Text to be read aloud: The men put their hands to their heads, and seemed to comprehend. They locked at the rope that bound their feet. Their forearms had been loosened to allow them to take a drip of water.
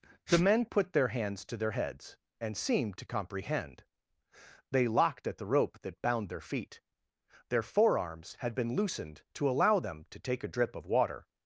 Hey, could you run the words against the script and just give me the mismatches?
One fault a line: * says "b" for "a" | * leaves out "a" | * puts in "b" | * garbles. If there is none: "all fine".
all fine